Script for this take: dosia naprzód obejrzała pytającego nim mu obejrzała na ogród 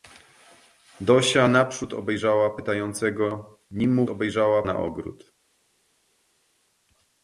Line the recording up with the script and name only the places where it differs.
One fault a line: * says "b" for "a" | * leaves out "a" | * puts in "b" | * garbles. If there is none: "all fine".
all fine